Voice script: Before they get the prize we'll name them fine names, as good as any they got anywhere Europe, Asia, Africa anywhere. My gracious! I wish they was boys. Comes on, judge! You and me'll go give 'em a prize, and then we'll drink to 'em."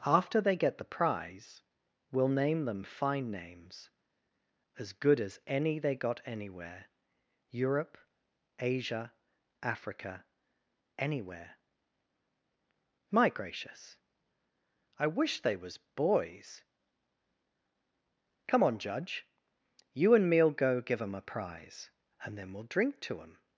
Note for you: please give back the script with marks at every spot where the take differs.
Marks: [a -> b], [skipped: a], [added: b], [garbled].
[Before -> After] they get the prize we'll name them fine names, as good as any they got anywhere Europe, Asia, Africa anywhere. My gracious! I wish they was boys. [Comes -> Come] on, judge! You and me'll go give 'em a prize, and then we'll drink to 'em."